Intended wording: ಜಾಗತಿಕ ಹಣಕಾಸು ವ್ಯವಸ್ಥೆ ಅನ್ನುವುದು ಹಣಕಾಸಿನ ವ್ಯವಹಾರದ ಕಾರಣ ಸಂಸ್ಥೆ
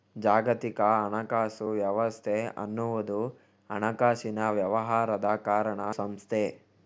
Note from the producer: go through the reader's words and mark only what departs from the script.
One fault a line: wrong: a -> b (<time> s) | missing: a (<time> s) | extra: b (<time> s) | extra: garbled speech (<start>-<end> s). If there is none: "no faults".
no faults